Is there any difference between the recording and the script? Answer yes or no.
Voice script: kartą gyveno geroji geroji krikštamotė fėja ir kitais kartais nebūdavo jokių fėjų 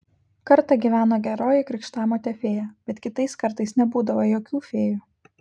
yes